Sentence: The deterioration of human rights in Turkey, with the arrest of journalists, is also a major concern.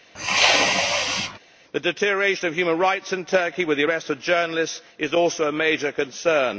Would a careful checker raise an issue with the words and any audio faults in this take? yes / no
yes